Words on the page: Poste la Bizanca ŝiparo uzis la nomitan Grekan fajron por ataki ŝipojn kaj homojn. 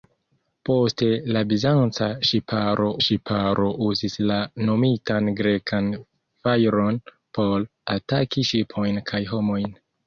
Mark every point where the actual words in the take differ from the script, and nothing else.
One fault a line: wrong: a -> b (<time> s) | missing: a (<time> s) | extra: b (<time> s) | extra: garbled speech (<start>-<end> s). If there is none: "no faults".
extra: ŝiparo (3.1 s)